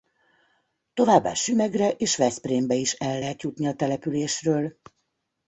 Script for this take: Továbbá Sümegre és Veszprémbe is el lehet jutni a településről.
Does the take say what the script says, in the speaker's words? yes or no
yes